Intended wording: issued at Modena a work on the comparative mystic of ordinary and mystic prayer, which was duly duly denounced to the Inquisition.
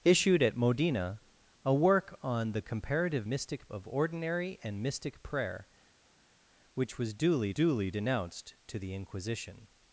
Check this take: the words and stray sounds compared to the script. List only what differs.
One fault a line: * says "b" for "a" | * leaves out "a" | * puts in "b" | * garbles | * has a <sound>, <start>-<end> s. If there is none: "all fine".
all fine